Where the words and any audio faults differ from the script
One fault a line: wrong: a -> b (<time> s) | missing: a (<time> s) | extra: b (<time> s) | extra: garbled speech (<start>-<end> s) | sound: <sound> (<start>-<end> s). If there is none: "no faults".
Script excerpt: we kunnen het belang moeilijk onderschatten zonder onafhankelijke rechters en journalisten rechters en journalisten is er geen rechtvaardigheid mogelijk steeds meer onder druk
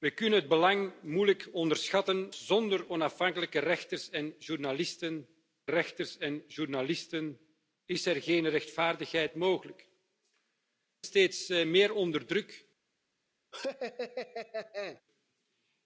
sound: laugh (13.5-15.0 s)